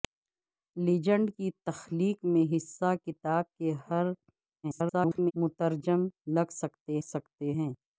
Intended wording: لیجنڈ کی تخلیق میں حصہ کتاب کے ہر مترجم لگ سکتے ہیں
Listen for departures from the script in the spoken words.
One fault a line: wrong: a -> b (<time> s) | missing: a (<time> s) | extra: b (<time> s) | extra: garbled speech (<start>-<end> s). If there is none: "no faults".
extra: garbled speech (4.6-5.3 s)
extra: سکتے (7.0 s)